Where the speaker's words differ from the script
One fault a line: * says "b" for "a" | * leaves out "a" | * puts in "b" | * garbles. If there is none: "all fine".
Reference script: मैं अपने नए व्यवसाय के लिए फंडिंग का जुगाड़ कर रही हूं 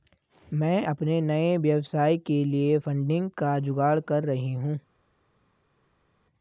all fine